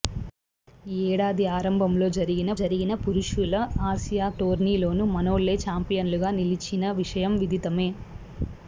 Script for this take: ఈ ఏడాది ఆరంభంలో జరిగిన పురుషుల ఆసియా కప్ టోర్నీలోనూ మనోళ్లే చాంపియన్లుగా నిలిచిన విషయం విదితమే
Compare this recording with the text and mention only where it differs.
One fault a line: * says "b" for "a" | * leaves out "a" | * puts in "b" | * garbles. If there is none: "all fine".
* puts in "జరిగిన"
* leaves out "కప్"